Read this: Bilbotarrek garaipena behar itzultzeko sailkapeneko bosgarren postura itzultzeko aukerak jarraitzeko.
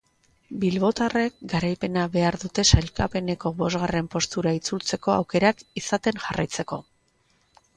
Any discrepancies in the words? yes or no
yes